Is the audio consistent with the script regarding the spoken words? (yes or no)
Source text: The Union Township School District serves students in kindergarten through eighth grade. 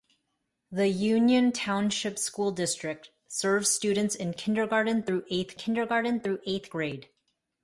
no